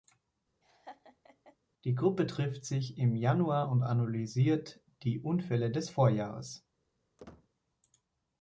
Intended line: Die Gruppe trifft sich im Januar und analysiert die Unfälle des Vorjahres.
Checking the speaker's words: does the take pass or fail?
pass